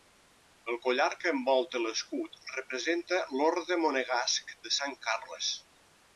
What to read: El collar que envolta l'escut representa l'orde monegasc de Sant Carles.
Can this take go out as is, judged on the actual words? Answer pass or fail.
pass